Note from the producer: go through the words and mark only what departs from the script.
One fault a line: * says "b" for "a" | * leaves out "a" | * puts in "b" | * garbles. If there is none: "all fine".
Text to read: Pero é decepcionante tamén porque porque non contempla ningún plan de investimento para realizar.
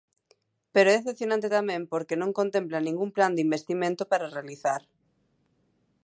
* leaves out "porque"